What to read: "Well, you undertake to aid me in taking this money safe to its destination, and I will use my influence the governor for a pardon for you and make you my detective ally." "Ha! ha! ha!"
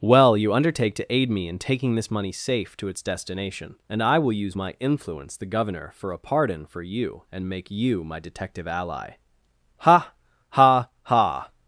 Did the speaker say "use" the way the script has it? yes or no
yes